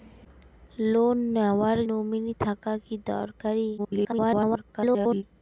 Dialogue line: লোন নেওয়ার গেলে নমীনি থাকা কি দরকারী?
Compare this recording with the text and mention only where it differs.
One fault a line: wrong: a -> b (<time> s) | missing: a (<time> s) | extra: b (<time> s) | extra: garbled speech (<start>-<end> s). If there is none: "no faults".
missing: গেলে (1.8 s)
extra: garbled speech (3.8-5.2 s)